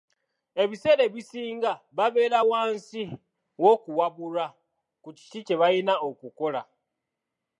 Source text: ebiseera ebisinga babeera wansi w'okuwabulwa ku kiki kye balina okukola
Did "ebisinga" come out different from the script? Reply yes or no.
no